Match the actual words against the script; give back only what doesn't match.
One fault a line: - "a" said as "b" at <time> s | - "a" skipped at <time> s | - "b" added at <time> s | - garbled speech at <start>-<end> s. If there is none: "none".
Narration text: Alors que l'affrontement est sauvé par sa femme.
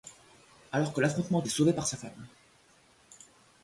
none